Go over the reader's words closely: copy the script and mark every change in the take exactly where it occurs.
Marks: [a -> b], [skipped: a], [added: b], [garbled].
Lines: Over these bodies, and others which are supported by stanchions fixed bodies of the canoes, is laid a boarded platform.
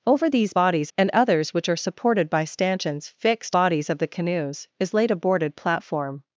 Over these bodies, and others which are supported by stanchions fixed bodies of the canoes, is laid a boarded platform.